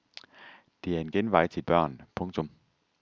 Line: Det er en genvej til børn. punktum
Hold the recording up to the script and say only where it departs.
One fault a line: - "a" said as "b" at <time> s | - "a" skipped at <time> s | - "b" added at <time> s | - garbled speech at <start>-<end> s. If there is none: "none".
none